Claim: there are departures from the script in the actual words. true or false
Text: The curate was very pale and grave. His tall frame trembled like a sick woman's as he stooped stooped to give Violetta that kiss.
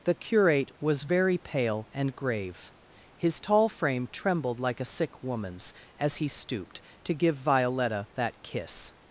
true